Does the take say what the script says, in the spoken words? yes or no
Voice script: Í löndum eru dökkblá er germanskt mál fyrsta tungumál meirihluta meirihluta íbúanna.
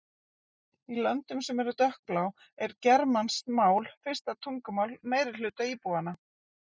no